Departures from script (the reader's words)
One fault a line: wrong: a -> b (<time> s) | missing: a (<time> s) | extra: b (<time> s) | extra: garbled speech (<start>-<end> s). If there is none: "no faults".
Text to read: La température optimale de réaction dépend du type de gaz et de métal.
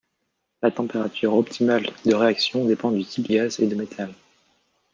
missing: de (3.3 s)